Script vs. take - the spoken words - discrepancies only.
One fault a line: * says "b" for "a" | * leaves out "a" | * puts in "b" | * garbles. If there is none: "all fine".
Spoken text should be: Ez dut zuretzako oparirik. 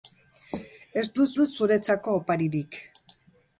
* puts in "dut"